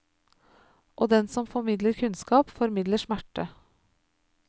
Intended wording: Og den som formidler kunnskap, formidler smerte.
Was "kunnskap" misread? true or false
false